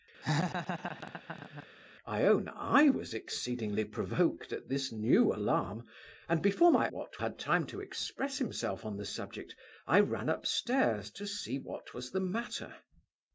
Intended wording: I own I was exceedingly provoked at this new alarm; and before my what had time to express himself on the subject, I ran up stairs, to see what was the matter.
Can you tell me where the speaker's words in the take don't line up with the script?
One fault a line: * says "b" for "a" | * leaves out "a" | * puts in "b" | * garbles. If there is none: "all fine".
all fine